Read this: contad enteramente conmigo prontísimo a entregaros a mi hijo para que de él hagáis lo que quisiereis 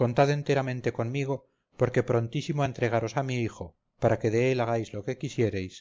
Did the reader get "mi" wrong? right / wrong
right